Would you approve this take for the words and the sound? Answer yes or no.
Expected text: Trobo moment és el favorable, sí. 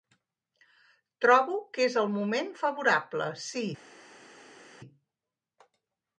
no